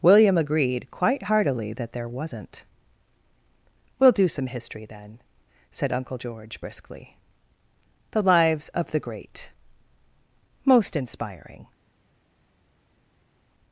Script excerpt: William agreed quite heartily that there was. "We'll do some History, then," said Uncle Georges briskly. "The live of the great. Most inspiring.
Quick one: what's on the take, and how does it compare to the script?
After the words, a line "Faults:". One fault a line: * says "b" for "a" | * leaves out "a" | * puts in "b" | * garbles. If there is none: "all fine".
William agreed quite heartily that there wasn't. "We'll do some History, then," said Uncle George briskly. "The lives of the great. Most inspiring.
Faults:
* says "wasn't" for "was"
* says "George" for "Georges"
* says "lives" for "live"